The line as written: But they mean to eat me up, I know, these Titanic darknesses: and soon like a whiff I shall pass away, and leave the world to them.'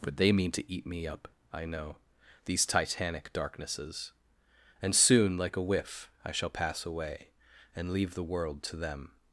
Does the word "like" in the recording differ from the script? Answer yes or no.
no